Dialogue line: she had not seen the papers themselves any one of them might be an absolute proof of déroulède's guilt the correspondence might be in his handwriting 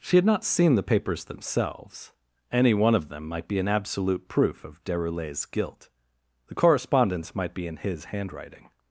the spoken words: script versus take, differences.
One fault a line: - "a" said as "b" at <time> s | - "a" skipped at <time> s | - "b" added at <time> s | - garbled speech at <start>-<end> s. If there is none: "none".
none